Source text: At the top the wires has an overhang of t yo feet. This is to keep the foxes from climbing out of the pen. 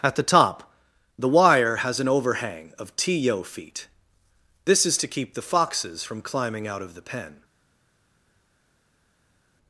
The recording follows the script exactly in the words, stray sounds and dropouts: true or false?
false